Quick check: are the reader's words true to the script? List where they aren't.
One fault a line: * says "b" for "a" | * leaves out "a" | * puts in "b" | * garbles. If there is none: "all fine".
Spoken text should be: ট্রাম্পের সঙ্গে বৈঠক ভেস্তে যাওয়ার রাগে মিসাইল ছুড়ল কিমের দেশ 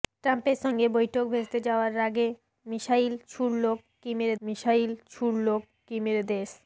* puts in "মিসাইল ছুড়ল কিমের"